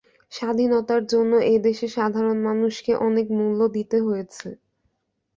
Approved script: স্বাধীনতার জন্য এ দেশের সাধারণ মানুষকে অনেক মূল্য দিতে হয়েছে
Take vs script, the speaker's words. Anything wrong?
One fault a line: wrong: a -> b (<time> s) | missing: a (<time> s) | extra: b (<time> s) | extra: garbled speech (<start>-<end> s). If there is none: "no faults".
no faults